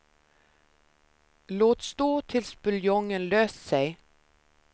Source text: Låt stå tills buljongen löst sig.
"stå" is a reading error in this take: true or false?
false